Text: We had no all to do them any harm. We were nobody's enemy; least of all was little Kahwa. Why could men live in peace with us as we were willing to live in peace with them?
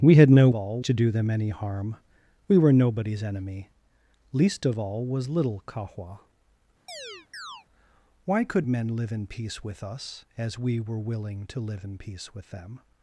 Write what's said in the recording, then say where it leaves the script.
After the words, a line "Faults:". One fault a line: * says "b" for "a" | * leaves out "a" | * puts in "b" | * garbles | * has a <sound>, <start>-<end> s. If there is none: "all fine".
We had no all to do them any harm. We were nobody's enemy; least of all was little Kahwa. Why could men live in peace with us as we were willing to live in peace with them?
Faults:
* has a chirp, 6.9-7.7 s